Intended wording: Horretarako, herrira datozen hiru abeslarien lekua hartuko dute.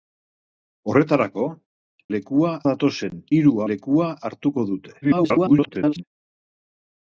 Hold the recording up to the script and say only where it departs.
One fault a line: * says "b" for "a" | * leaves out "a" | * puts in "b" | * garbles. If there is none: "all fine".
* says "lekua" for "herrira"
* leaves out "abeslarien"
* garbles